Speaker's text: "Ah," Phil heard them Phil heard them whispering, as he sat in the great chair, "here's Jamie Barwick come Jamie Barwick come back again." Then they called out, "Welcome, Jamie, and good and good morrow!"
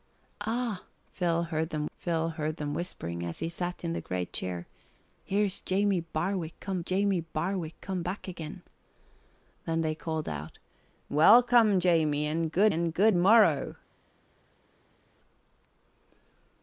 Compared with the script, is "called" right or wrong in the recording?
right